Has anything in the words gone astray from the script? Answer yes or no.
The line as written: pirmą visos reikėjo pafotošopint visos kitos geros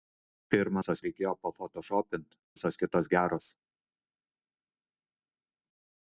no